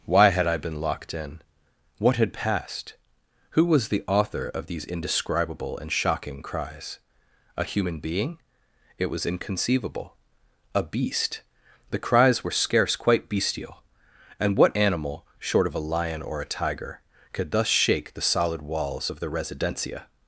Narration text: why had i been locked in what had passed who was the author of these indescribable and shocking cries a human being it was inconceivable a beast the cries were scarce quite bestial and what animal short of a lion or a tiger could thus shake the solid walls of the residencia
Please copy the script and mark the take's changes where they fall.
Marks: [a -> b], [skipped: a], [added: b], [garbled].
why had i been locked in what had passed who was the author of these indescribable and shocking cries a human being it was inconceivable a beast the cries were scarce quite bestial and what animal short of a lion or a tiger could thus shake the solid walls of the residencia